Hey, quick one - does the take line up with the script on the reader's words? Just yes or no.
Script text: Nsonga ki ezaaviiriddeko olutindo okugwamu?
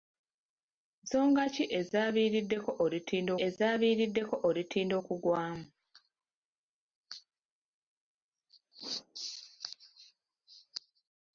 no